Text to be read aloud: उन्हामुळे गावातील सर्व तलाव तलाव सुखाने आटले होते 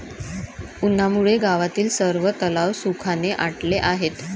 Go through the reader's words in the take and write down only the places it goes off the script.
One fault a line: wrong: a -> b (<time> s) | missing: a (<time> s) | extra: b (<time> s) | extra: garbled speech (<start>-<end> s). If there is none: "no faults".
missing: तलाव (2.7 s)
wrong: होते -> आहेत (3.8 s)